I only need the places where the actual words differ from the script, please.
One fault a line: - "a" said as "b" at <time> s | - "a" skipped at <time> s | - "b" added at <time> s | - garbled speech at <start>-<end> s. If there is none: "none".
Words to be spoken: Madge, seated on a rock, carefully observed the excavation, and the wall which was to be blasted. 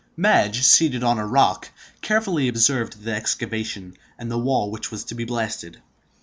none